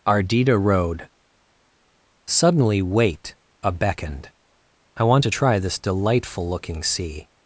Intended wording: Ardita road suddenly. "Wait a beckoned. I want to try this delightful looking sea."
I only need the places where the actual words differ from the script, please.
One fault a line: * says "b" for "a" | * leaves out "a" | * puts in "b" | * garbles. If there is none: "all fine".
all fine